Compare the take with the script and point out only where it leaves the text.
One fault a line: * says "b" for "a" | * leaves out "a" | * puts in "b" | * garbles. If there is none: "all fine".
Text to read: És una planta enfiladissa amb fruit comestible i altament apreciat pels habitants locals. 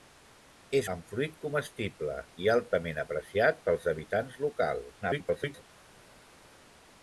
* leaves out "una planta enfiladissa"
* garbles